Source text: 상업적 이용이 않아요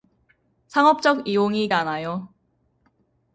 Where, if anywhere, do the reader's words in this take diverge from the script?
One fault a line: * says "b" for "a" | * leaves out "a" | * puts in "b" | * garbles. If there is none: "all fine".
all fine